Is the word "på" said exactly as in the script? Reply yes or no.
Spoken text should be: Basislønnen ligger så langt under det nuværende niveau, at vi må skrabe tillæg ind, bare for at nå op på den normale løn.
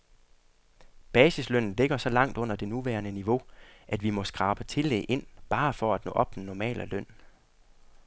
no